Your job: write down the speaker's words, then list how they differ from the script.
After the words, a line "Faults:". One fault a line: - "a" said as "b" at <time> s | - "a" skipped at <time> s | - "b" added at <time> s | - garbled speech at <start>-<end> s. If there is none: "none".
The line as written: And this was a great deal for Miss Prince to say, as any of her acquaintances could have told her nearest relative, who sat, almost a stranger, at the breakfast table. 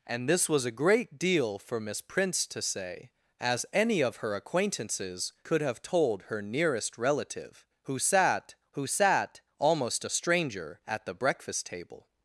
And this was a great deal for Miss Prince to say, as any of her acquaintances could have told her nearest relative, who sat who sat, almost a stranger, at the breakfast table.
Faults:
- "who sat" added at 8.7 s